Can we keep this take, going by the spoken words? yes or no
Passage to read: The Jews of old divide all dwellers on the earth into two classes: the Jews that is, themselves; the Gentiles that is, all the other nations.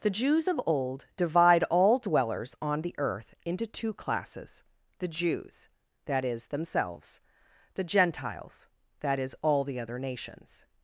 yes